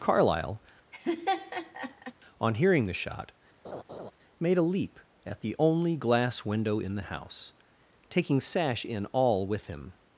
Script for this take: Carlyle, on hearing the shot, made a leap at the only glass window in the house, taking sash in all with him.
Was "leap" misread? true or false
false